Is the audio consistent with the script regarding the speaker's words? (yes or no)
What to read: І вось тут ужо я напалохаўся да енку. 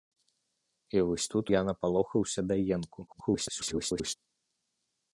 no